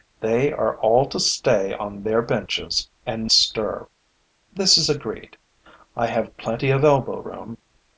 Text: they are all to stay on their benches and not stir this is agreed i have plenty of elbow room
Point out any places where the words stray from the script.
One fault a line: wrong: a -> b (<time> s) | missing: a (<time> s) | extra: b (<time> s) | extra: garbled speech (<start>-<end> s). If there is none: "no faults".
missing: not (3.3 s)